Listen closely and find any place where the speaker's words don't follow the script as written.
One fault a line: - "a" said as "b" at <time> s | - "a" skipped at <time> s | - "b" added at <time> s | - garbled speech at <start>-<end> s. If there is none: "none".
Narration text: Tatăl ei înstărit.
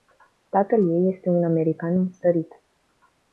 - "este un american" added at 1.1 s